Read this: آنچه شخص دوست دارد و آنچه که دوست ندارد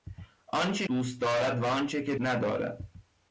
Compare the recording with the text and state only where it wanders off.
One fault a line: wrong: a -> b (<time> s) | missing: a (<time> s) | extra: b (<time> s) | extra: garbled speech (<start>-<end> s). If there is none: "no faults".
missing: شخص (0.9 s)
missing: دوست (2.1 s)